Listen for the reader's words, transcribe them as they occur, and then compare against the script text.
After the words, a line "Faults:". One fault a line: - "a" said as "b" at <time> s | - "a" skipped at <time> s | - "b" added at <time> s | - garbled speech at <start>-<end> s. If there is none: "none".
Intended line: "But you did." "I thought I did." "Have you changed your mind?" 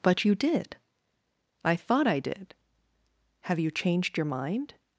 "But you did." "I thought I did." "Have you changed your mind?"
Faults:
none